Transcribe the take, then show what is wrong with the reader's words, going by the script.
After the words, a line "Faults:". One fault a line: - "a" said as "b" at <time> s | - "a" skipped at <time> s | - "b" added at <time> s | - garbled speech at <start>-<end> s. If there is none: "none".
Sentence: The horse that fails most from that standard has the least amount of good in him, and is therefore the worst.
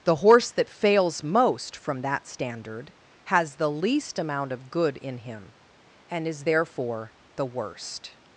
The horse that fails most from that standard has the least amount of good in him, and is therefore the worst.
Faults:
none